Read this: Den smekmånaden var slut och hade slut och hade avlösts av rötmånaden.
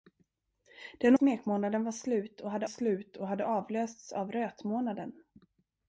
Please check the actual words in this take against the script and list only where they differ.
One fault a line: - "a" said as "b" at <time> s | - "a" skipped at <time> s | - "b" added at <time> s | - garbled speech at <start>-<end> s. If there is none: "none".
none